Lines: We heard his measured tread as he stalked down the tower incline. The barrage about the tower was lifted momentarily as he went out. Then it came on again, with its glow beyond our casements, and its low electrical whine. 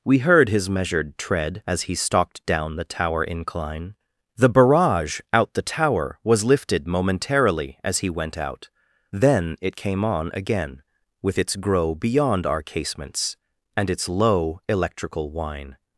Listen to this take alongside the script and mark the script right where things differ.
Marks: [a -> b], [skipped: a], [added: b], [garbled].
We heard his measured tread as he stalked down the tower incline. The barrage [about -> out] the tower was lifted momentarily as he went out. Then it came on again, with its [glow -> grow] beyond our casements, and its low electrical whine.